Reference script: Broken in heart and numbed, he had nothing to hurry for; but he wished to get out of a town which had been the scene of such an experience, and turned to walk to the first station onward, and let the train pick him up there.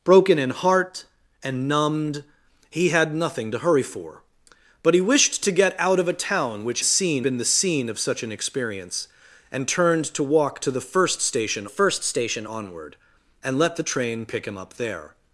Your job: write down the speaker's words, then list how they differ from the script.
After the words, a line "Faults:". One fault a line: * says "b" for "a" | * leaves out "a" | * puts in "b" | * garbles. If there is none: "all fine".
Broken in heart and numbed, he had nothing to hurry for; but he wished to get out of a town which scene been the scene of such an experience, and turned to walk to the first station first station onward, and let the train pick him up there.
Faults:
* says "scene" for "had"
* puts in "first station"